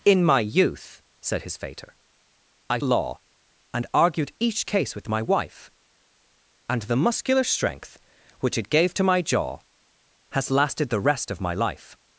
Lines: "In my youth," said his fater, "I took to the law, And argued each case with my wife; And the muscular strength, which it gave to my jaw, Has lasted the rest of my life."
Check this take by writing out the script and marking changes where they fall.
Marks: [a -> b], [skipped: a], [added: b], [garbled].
"In my youth," said his fater, "I [skipped: took to the] law, And argued each case with my wife; And the muscular strength, which it gave to my jaw, Has lasted the rest of my life."